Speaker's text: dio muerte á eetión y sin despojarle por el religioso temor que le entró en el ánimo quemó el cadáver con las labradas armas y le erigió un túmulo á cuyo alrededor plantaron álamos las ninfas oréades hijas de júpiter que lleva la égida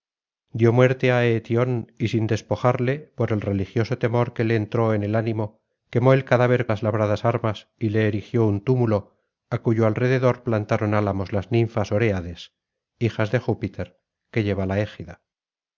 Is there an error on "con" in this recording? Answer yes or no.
yes